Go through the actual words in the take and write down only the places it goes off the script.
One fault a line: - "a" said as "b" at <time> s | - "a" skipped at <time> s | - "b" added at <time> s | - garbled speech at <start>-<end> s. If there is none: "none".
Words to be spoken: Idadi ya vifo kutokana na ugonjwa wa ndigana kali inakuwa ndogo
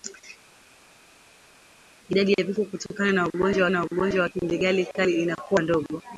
- "na ugonjwa" added at 3.7 s